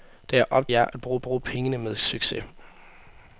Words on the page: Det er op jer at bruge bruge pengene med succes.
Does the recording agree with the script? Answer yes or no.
yes